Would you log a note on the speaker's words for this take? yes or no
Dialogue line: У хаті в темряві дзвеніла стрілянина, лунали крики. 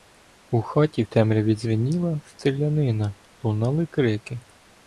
no